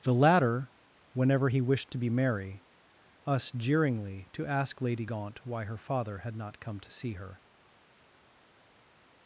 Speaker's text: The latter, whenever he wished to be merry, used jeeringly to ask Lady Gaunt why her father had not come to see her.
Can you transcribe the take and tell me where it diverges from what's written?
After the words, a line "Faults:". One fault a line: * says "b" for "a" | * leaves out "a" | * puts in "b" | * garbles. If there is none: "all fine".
The latter, whenever he wished to be merry, us jeeringly to ask Lady Gaunt why her father had not come to see her.
Faults:
* says "us" for "used"